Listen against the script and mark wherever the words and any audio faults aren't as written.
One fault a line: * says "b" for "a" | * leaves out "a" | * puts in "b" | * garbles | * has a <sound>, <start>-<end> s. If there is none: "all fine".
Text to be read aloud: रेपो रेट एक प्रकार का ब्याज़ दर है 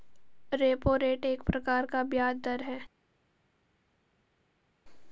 all fine